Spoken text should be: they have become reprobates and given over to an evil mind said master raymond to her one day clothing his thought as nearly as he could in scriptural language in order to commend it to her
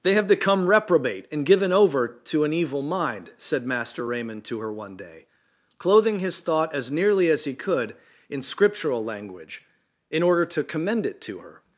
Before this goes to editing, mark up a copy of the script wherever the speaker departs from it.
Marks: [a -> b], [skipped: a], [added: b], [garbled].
they have become [reprobates -> reprobate] and given over to an evil mind said master raymond to her one day clothing his thought as nearly as he could in scriptural language in order to commend it to her